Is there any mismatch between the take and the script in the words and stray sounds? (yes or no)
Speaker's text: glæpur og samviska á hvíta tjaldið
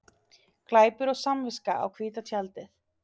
no